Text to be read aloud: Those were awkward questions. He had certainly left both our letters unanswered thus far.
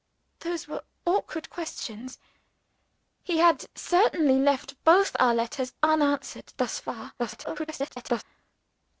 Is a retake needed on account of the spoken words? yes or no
yes